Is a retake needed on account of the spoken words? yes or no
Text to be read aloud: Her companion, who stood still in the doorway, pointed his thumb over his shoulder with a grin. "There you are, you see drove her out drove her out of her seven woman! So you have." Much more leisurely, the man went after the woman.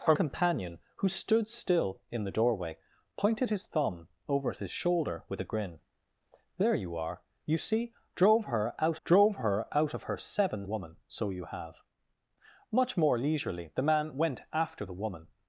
no